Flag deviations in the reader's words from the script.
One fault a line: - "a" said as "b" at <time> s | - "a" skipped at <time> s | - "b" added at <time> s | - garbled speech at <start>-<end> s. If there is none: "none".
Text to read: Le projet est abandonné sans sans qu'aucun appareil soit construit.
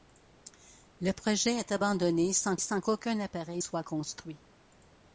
none